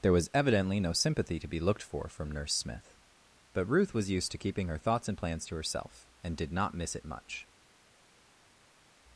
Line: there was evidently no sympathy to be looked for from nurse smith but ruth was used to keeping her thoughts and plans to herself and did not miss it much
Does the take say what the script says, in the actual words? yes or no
yes